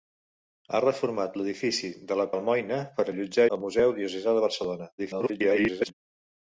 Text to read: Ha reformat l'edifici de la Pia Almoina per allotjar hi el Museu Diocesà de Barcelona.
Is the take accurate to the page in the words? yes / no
no